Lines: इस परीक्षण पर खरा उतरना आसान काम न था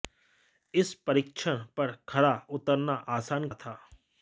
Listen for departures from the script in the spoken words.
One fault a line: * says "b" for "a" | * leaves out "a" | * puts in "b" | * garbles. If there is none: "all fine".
* leaves out "काम"